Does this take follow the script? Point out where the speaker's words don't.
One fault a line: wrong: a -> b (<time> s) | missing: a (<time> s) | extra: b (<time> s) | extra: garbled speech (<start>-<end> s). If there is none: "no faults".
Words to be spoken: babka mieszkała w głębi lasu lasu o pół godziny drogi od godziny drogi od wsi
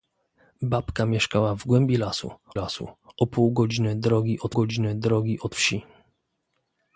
no faults